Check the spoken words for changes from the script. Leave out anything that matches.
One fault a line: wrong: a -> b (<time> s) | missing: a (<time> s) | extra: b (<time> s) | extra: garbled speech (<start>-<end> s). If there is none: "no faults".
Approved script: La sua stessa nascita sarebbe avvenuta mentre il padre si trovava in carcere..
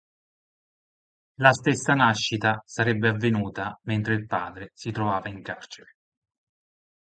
missing: sua (1.5 s)